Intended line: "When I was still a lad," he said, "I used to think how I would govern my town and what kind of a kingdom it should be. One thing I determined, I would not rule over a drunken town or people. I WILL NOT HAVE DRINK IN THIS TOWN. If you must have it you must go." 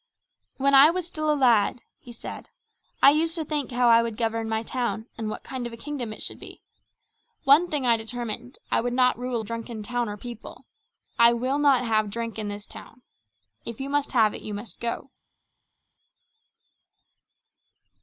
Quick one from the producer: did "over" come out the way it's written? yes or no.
no